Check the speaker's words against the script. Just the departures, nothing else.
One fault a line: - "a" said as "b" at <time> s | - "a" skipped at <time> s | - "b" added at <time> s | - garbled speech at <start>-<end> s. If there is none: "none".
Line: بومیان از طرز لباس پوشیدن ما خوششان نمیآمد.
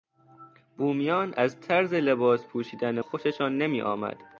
- "ما" skipped at 3.0 s